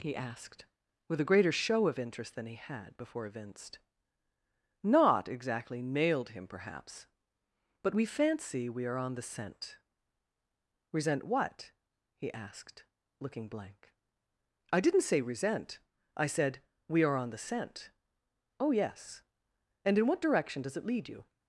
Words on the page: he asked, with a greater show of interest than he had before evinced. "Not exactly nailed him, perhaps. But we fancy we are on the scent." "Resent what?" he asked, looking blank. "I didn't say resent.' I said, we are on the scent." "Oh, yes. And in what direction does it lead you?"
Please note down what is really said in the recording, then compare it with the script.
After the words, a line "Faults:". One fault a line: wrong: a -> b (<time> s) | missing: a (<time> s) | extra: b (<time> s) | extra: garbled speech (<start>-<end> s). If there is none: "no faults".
he asked, with a greater show of interest than he had before evinced. "Not exactly nailed him, perhaps. But we fancy we are on the scent." "Resent what?" he asked, looking blank. "I didn't say resent.' I said, we are on the scent." "Oh, yes. And in what direction does it lead you?"
Faults:
no faults